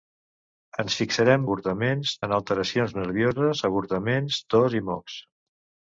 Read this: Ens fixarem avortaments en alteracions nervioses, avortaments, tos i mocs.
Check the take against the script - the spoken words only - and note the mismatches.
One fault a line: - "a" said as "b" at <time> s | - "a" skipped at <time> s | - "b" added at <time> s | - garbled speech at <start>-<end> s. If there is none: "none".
none